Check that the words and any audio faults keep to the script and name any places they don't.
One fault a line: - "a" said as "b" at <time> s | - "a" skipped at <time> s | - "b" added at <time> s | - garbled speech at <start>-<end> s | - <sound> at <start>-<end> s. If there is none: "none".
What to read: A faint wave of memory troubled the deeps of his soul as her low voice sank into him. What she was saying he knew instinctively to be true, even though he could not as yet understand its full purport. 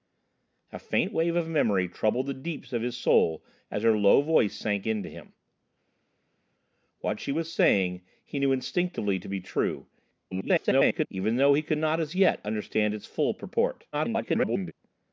- garbled speech at 10.3-11.1 s
- garbled speech at 13.9-14.7 s